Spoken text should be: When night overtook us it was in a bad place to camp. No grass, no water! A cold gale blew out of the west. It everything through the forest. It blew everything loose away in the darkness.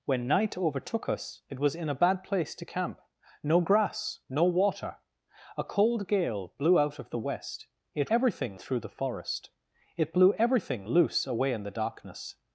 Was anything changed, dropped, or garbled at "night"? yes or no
no